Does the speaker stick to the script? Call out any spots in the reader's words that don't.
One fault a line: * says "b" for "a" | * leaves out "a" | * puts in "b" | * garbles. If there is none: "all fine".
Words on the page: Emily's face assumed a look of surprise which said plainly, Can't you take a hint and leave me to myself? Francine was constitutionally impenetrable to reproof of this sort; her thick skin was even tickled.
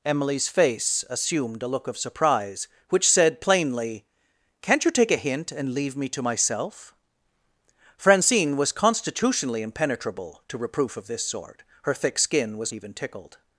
all fine